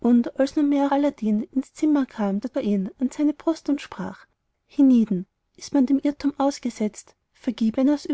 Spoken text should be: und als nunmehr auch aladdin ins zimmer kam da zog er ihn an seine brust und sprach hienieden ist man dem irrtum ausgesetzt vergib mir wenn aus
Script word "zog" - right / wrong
wrong